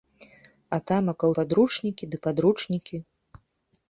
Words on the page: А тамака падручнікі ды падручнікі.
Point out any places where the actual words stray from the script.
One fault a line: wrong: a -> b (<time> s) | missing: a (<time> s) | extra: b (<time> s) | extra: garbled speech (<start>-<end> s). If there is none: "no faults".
no faults